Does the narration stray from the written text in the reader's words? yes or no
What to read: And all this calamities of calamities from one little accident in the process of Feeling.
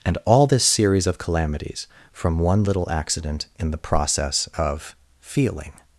yes